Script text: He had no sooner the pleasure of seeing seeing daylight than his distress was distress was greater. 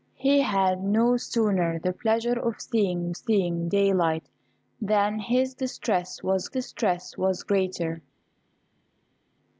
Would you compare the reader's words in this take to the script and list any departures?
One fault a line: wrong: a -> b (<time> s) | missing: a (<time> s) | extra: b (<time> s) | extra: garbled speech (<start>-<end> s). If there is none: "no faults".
no faults